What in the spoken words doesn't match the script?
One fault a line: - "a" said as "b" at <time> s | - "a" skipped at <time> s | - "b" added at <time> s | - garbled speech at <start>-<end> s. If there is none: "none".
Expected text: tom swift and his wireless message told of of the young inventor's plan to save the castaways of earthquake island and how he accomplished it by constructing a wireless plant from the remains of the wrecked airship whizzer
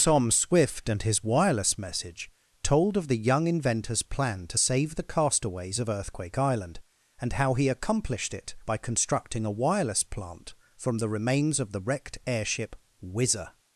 - "of" skipped at 3.1 s